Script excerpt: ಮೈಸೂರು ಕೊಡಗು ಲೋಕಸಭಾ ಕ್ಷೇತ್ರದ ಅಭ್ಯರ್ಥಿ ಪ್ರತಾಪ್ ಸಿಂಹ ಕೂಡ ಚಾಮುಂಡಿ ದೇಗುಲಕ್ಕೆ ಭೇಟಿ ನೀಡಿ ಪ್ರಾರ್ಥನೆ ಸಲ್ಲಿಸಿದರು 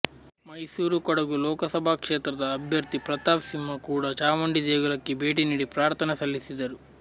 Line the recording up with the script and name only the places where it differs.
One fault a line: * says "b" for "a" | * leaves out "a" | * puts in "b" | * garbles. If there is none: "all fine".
all fine